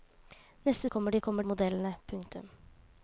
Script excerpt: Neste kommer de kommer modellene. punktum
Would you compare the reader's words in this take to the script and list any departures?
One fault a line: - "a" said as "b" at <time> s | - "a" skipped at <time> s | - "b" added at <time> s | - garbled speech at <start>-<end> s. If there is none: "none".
none